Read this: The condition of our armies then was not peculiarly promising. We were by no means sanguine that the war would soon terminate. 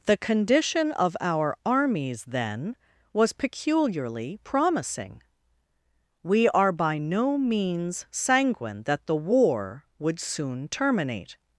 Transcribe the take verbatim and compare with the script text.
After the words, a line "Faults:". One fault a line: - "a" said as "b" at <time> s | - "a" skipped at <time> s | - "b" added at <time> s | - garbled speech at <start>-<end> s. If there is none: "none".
The condition of our armies then was peculiarly promising. We are by no means sanguine that the war would soon terminate.
Faults:
- "not" skipped at 3.3 s
- "were" said as "are" at 6.5 s